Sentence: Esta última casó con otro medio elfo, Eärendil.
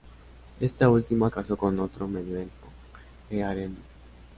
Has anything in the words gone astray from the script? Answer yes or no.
no